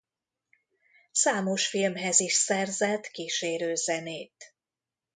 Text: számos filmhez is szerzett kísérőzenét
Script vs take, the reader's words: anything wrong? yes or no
no